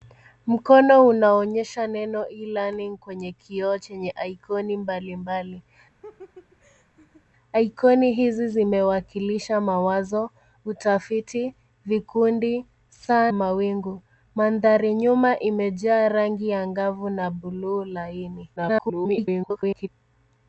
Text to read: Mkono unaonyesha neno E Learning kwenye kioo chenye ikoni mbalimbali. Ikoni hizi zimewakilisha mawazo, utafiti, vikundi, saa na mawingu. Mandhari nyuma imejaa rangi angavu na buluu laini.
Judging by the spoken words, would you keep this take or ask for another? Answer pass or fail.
fail